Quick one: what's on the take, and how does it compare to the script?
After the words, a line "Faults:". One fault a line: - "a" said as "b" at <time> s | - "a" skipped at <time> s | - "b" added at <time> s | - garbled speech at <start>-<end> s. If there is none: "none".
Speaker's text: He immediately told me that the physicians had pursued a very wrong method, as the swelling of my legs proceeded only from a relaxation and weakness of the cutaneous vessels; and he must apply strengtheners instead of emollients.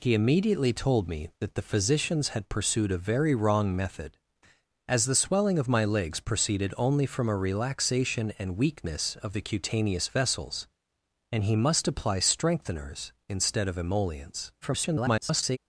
He immediately told me that the physicians had pursued a very wrong method, as the swelling of my legs proceeded only from a relaxation and weakness of the cutaneous vessels; and he must apply strengtheners instead of emollients. [garbled]
Faults:
- garbled speech at 14.6-15.6 s